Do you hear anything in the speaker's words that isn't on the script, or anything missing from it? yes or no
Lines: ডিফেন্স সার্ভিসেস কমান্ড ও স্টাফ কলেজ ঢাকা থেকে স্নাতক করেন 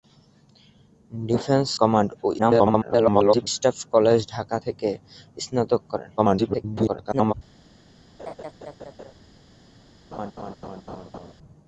yes